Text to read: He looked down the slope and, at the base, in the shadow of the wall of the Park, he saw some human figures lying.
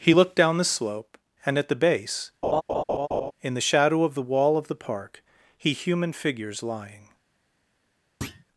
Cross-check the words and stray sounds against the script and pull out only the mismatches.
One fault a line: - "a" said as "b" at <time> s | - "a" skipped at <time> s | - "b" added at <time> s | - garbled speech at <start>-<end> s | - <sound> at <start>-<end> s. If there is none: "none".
- laugh at 2.4-3.3 s
- "saw some" skipped at 5.7 s
- thud at 8.2-8.4 s